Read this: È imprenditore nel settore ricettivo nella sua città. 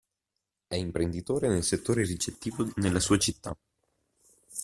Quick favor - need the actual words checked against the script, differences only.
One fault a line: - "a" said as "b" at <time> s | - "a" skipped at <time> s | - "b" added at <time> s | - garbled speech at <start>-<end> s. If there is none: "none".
none